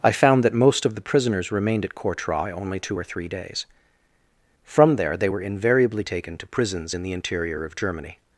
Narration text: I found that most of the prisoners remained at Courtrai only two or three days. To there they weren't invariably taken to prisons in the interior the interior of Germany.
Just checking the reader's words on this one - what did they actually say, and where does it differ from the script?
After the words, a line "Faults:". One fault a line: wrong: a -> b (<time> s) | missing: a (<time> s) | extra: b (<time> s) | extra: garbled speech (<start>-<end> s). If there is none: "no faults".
I found that most of the prisoners remained at Courtrai only two or three days. From there they were invariably taken to prisons in the interior of Germany.
Faults:
wrong: To -> From (4.6 s)
wrong: weren't -> were (5.3 s)
missing: the interior (7.6 s)